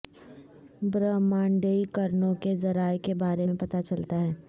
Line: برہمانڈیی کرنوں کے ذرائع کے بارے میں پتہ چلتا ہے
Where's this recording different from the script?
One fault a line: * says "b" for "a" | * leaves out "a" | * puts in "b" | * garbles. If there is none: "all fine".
all fine